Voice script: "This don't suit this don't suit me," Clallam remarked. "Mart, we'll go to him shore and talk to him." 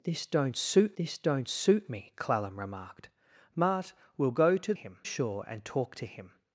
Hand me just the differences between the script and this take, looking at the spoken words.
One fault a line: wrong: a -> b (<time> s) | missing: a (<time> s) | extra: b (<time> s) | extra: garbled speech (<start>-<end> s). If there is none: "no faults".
no faults